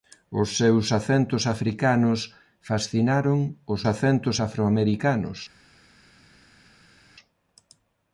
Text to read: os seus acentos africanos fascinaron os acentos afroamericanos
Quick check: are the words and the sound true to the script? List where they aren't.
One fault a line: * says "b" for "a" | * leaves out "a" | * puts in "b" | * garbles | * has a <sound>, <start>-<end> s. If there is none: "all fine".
all fine